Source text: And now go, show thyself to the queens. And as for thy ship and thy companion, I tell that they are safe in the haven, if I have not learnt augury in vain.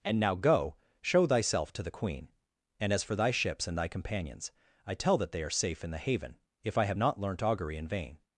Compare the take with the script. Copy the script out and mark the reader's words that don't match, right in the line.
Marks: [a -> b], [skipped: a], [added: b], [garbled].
And now go, show thyself to the [queens. -> queen] And as for thy [ship -> ships] and thy [companion, -> companions] I tell that they are safe in the haven, if I have not learnt augury in vain.